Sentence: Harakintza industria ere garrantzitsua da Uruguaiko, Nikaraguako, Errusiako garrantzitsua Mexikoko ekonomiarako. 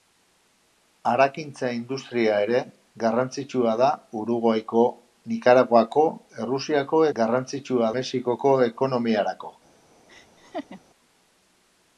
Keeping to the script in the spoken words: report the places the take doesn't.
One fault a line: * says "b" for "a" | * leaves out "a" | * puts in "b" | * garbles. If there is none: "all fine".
all fine